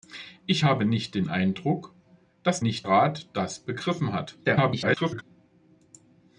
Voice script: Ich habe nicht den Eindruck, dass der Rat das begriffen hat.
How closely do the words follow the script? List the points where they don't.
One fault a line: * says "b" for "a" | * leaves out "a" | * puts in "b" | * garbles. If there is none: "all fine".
* says "nicht" for "der"
* garbles